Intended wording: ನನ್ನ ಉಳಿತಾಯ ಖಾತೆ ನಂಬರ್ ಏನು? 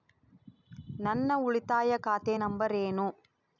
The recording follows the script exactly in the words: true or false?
true